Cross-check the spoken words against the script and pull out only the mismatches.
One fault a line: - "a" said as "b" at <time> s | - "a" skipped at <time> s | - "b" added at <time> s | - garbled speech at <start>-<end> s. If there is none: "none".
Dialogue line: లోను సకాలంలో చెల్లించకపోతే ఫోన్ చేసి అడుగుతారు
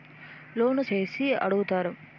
- "సకాలంలో చెల్లించకపోతే ఫోన్" skipped at 0.8 s